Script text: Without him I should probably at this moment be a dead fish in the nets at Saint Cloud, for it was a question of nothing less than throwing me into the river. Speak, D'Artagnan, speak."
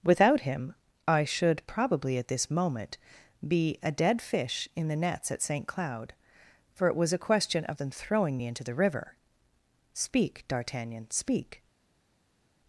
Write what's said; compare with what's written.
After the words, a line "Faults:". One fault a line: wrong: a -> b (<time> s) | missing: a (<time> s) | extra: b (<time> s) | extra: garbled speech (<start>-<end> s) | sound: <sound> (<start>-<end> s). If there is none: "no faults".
Without him I should probably at this moment be a dead fish in the nets at Saint Cloud, for it was a question of than throwing me into the river. Speak, D'Artagnan, speak."
Faults:
missing: nothing less (7.8 s)